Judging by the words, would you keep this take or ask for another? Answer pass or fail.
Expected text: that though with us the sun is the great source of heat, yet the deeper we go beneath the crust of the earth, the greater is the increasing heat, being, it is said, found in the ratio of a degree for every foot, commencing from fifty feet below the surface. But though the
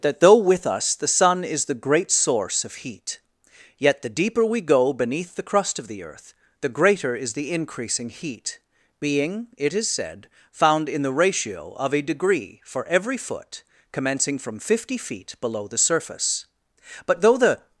pass